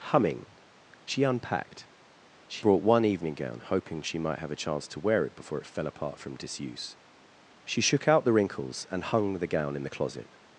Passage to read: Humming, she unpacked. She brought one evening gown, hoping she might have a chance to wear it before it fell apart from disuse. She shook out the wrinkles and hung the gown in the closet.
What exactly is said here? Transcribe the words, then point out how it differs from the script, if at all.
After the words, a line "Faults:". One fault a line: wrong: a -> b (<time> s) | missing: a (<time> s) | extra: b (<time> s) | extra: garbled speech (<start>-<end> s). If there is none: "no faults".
Humming, she unpacked. She brought one evening gown, hoping she might have a chance to wear it before it fell apart from disuse. She shook out the wrinkles and hung the gown in the closet.
Faults:
no faults